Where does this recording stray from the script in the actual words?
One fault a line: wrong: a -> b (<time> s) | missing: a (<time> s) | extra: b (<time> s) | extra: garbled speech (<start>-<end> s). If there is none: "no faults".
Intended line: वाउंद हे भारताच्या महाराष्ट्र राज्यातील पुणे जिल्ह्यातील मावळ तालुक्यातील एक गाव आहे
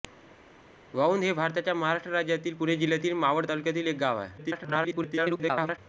extra: garbled speech (4.4-5.8 s)